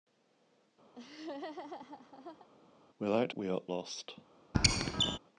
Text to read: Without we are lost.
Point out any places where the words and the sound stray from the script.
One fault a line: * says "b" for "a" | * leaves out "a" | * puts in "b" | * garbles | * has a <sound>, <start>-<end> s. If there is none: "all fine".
* has a laugh, 0.9-2.5 s
* has a squeak, 4.5-5.2 s